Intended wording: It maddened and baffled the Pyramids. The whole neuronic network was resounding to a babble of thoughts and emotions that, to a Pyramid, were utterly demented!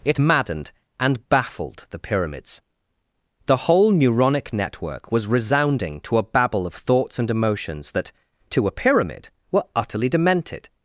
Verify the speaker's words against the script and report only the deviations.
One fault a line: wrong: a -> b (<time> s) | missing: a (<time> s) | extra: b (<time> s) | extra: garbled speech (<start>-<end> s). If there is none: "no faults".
no faults